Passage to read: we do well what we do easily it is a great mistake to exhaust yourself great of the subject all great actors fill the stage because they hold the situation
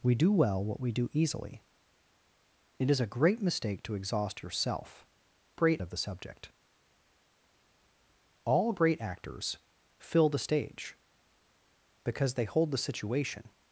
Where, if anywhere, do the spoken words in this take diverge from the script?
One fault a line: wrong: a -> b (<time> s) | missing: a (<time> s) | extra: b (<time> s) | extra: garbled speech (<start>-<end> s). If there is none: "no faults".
no faults